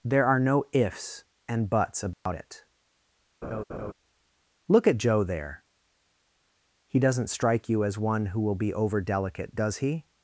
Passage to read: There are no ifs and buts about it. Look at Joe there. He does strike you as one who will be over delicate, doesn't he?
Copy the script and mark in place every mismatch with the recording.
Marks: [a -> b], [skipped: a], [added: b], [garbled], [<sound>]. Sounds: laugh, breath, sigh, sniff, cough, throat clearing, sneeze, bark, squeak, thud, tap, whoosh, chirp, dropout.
There are no ifs and buts about [dropout] it. [laugh] Look at Joe there. He [does -> doesn't] strike you as one who will be over delicate, [doesn't -> does] he?